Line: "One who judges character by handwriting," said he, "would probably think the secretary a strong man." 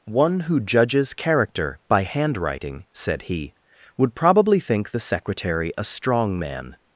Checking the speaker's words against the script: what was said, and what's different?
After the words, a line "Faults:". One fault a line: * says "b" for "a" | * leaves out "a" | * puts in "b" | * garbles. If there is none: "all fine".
"One who judges character by handwriting," said he, "would probably think the secretary a strong man."
Faults:
all fine